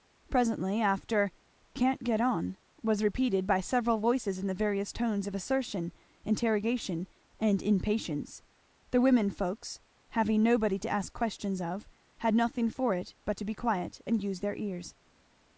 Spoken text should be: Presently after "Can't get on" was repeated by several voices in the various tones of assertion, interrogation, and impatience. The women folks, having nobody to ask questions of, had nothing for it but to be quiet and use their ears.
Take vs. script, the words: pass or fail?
pass